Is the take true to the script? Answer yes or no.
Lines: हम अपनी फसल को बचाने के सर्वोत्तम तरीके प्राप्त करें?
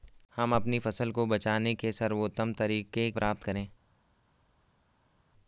yes